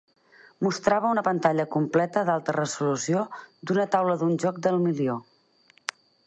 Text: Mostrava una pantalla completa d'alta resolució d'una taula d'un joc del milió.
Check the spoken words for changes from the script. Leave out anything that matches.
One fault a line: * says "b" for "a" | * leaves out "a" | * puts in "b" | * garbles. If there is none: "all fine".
all fine